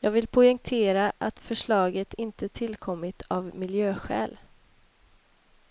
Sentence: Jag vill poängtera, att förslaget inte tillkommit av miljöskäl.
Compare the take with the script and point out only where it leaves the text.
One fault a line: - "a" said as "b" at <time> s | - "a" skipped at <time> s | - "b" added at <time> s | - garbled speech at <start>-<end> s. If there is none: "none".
none